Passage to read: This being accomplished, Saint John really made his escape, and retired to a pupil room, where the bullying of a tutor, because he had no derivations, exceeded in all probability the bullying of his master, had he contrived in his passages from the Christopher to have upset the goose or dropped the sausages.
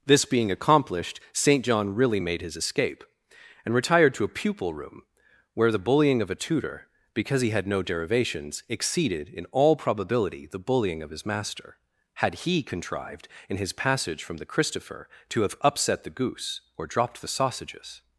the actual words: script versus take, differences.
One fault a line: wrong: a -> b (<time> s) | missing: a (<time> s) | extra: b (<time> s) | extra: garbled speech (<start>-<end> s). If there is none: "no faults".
wrong: passages -> passage (13.7 s)